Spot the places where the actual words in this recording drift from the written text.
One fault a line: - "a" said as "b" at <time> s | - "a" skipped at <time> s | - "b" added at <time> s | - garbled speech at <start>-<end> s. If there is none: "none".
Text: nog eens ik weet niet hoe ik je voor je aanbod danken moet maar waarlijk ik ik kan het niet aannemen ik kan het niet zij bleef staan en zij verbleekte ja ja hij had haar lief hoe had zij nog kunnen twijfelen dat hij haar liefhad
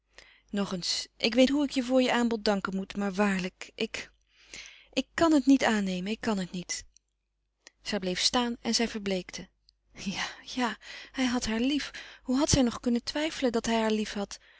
- "niet" skipped at 1.5 s